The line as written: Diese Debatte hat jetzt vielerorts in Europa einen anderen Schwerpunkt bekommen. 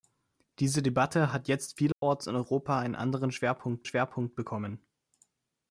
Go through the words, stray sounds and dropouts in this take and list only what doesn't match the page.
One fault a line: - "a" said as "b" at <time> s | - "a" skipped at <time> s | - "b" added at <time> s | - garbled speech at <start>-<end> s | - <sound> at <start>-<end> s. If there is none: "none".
- dropout at 1.9-2.0 s
- "Schwerpunkt" added at 3.8 s